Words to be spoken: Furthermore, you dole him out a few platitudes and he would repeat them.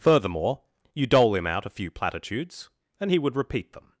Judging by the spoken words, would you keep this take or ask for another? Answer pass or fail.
pass